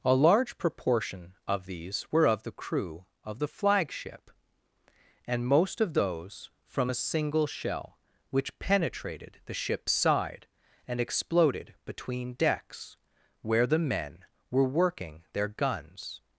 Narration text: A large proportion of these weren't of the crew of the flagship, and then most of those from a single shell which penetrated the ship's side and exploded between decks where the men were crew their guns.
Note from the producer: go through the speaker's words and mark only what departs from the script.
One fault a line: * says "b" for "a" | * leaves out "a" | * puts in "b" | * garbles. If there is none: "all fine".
* says "were" for "weren't"
* leaves out "then"
* says "working" for "crew"